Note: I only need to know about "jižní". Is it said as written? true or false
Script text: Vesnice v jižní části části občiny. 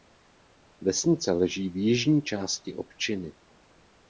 true